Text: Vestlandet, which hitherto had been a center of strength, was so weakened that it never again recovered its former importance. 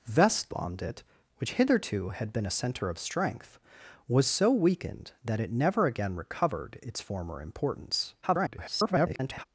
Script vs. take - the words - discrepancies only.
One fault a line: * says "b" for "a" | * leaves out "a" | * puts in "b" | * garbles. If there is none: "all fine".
* garbles